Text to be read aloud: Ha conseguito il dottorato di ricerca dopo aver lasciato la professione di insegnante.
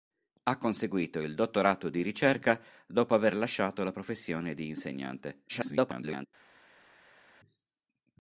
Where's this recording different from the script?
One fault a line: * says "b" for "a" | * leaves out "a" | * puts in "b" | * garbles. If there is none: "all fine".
* garbles